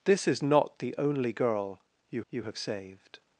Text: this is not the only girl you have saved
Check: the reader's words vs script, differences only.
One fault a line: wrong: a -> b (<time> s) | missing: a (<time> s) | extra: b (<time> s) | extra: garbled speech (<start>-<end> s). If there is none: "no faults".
extra: you (2.3 s)